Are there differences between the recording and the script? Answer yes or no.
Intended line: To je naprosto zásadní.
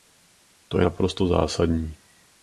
no